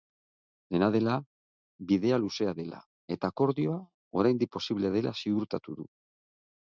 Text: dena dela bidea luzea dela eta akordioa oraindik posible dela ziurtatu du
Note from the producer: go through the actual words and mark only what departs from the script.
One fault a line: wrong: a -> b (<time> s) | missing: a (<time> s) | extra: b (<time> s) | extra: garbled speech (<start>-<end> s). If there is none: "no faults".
no faults